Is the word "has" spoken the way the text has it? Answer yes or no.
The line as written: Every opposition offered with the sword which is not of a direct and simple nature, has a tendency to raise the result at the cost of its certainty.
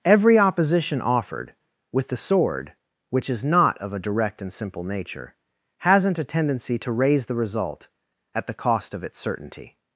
no